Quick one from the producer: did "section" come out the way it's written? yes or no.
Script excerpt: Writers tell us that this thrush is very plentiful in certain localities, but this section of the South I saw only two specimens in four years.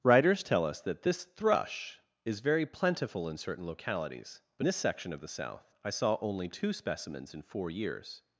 yes